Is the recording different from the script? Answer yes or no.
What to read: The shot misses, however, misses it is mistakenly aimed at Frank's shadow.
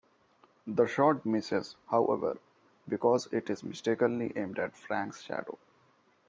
yes